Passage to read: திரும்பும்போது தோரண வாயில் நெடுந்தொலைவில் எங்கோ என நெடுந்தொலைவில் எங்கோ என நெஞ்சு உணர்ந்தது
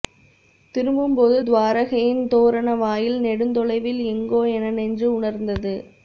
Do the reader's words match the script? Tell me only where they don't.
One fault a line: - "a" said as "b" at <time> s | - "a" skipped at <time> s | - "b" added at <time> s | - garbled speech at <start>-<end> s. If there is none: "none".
- "துவாரகையின்" added at 1.4 s
- "நெடுந்தொலைவில் எங்கோ என" skipped at 4.7 s